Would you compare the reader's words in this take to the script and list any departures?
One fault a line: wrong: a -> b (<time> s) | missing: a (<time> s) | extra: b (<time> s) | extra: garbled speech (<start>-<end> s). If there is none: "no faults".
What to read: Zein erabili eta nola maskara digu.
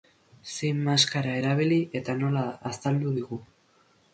extra: maskara (0.9 s)
wrong: maskara -> azaldu (2.7 s)